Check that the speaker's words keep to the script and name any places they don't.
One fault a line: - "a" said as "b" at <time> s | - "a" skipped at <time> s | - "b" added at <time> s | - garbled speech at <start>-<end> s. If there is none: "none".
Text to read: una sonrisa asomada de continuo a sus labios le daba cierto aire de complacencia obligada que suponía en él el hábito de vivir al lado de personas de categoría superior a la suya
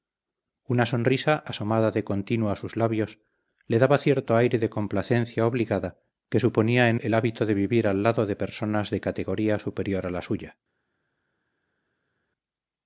- "él" skipped at 7.0 s